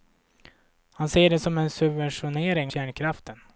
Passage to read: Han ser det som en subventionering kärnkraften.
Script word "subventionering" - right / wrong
right